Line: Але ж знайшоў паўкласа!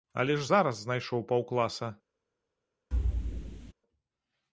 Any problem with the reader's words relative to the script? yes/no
yes